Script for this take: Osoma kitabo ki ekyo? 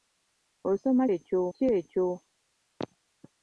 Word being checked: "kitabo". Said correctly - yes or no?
no